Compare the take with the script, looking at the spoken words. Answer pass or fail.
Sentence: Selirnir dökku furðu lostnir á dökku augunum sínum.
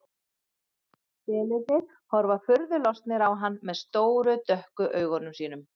fail